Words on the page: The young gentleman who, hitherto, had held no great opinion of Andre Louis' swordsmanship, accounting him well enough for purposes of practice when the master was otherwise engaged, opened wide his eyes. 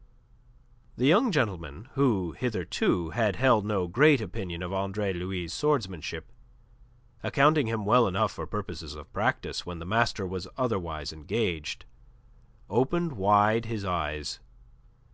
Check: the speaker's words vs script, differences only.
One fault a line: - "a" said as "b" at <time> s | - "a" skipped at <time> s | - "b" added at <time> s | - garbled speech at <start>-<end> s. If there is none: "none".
none